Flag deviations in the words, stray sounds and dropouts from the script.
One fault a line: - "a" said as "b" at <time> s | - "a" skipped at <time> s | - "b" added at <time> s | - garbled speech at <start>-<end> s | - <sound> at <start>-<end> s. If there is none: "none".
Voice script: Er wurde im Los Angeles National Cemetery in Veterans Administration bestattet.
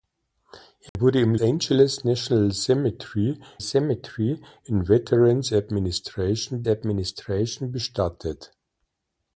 - dropout at 0.9-1.0 s
- "Los" skipped at 1.4 s
- "Cemetery" added at 3.6 s
- "Administration" added at 6.7 s